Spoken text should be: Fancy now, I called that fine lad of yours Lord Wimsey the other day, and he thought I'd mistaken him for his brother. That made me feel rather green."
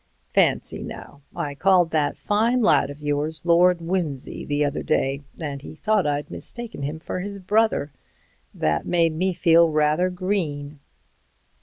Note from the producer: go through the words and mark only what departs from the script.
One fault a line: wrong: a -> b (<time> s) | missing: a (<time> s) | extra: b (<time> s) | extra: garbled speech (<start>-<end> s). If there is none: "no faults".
no faults